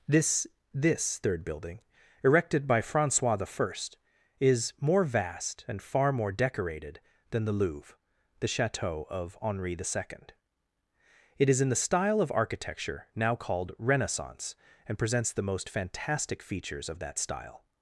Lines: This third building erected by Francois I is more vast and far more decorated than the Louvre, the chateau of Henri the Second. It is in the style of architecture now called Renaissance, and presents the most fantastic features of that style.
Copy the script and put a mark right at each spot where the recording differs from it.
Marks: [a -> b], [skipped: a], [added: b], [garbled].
This [added: this] third building erected by Francois I is more vast and far more decorated than the Louvre, the chateau of Henri the Second. It is in the style of architecture now called Renaissance, and presents the most fantastic features of that style.